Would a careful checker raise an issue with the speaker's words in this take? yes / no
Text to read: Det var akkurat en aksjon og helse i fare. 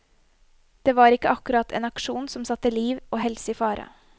yes